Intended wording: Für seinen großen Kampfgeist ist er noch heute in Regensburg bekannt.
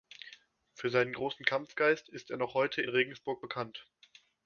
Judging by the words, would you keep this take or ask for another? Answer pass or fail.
pass